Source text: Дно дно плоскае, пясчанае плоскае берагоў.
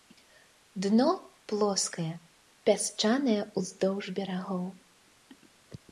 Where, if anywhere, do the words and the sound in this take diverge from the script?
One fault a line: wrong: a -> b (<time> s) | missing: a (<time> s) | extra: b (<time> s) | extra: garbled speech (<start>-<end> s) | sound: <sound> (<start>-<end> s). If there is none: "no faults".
missing: дно (1.1 s)
wrong: плоскае -> ўздоўж (3.6 s)